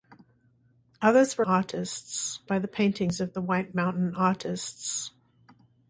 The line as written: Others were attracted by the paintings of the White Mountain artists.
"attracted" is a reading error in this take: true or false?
true